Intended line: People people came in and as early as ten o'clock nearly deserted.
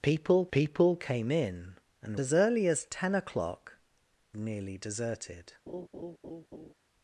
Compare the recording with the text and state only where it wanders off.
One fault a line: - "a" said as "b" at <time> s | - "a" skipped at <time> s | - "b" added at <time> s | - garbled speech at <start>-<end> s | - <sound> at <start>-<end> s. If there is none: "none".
- laugh at 5.7-6.7 s